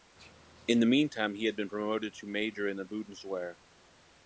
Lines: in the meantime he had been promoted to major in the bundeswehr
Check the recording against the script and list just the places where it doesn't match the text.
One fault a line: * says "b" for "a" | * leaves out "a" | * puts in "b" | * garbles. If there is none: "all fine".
all fine